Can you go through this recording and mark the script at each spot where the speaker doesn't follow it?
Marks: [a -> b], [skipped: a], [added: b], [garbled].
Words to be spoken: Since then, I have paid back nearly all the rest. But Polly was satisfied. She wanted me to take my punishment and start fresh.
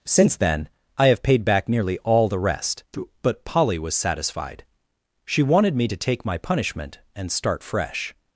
Since then, I have paid back nearly all the rest. But Polly was satisfied. She wanted me to take my punishment and start fresh.